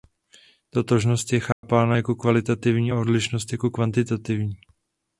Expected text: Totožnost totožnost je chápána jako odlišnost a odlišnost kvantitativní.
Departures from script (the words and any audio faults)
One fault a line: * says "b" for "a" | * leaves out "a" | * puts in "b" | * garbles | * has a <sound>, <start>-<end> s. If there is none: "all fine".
* leaves out "totožnost"
* has a dropout, 1.5-1.6 s
* says "kvalitativní" for "odlišnost"
* puts in "jako"